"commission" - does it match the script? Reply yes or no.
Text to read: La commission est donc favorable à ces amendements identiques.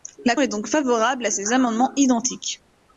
no